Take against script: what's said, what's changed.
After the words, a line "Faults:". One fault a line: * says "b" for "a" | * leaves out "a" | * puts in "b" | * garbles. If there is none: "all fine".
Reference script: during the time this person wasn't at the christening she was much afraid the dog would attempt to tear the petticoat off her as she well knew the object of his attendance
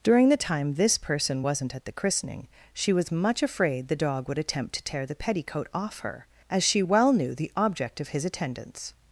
during the time this person wasn't at the christening she was much afraid the dog would attempt to tear the petticoat off her as she well knew the object of his attendance
Faults:
all fine